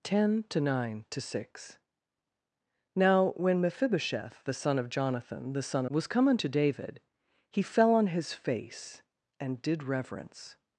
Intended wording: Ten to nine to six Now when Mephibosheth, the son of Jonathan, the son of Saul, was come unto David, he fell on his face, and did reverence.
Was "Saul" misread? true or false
true